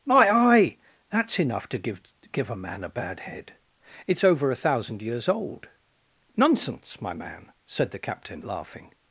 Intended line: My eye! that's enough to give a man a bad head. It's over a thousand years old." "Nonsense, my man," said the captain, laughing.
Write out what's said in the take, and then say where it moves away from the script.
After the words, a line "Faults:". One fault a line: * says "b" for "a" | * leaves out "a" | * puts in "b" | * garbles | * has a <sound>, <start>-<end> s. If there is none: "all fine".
My eye! that's enough to give give a man a bad head. It's over a thousand years old." "Nonsense, my man," said the captain, laughing.
Faults:
* puts in "give"